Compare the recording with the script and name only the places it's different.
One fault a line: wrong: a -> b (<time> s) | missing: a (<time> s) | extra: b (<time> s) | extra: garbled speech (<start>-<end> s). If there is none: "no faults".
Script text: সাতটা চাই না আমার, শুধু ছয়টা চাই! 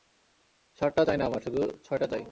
no faults